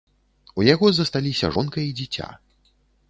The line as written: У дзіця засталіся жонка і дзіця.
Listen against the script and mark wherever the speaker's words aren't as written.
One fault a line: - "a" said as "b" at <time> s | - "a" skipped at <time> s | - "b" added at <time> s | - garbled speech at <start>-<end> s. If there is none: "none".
- "дзіця" said as "яго" at 0.7 s